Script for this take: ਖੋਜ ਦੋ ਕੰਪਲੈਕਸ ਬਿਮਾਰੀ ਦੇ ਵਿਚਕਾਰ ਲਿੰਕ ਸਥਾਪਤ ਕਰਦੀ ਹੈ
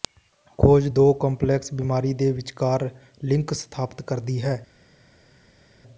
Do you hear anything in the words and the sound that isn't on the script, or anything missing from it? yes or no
no